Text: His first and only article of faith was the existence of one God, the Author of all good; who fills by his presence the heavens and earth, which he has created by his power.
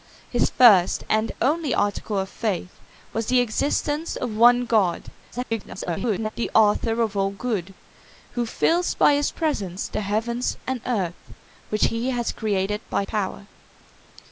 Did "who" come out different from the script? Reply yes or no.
no